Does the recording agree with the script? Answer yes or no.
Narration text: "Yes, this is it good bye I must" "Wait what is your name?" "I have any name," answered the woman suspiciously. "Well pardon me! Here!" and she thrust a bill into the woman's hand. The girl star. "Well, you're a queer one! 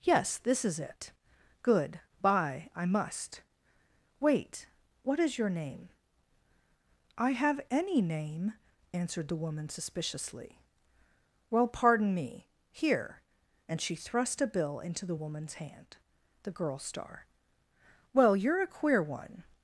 yes